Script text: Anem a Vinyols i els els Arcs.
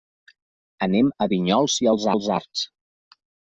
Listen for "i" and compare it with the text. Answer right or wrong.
right